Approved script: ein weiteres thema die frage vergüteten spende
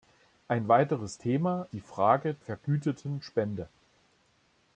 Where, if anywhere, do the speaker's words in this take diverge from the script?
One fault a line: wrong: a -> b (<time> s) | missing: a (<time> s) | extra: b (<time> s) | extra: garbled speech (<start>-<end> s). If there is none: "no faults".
no faults